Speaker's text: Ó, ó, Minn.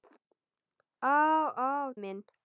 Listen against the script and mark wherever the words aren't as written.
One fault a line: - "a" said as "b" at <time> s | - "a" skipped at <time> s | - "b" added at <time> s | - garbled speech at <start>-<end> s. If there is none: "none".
none